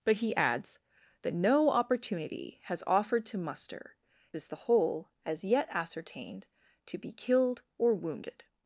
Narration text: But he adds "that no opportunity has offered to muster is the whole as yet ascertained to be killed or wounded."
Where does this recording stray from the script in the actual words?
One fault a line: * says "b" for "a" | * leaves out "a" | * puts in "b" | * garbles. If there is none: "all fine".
all fine